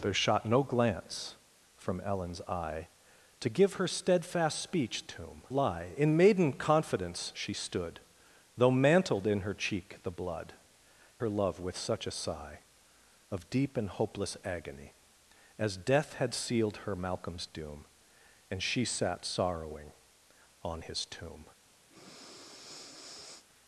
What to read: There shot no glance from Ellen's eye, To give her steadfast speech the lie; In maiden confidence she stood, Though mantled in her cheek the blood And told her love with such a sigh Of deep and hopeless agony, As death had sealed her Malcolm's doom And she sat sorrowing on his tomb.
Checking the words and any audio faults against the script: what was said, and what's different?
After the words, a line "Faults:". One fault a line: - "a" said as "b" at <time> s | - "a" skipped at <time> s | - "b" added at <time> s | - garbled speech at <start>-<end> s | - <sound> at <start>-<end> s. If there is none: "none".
There shot no glance from Ellen's eye, To give her steadfast speech tomb lie; In maiden confidence she stood, Though mantled in her cheek the blood Her love with such a sigh Of deep and hopeless agony, As death had sealed her Malcolm's doom And she sat sorrowing on his tomb.
Faults:
- "the" said as "tomb" at 5.0 s
- "And told" skipped at 10.5 s
- breath at 21.9-23.5 s